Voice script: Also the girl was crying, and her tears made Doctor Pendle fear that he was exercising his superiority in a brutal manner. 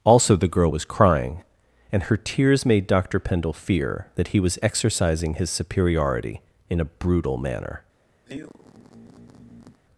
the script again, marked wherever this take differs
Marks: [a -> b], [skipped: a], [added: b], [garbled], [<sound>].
Also the girl was crying, and her tears made Doctor Pendle fear that he was exercising his superiority in a brutal manner. [sigh]